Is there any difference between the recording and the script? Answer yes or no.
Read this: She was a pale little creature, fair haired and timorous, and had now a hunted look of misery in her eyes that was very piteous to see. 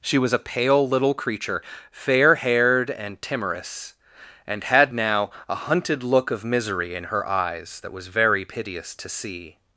no